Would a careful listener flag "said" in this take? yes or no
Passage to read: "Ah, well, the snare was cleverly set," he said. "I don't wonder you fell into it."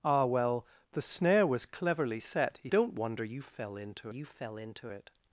yes